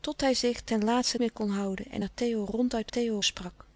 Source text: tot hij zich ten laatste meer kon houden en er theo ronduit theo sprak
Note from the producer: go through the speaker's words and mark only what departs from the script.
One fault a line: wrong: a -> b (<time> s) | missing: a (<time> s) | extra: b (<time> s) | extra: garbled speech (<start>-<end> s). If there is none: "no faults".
no faults